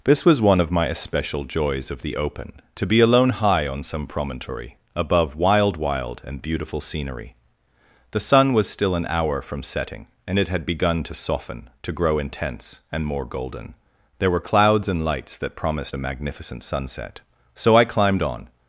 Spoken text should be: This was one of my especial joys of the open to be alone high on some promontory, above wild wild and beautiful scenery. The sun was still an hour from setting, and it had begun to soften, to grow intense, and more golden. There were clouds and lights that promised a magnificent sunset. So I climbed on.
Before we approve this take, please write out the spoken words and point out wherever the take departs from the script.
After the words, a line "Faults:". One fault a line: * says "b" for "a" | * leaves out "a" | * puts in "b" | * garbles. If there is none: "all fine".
This was one of my especial joys of the open to be alone high on some promontory, above wild wild and beautiful scenery. The sun was still an hour from setting, and it had begun to soften, to grow intense, and more golden. There were clouds and lights that promised a magnificent sunset. So I climbed on.
Faults:
all fine